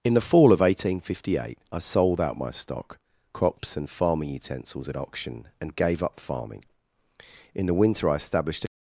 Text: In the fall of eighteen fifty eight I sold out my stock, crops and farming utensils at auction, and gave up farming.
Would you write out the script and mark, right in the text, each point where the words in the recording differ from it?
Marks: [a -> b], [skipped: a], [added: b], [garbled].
In the fall of eighteen fifty eight I sold out my stock, crops and farming utensils at auction, and gave up farming. [added: In the winter I established a]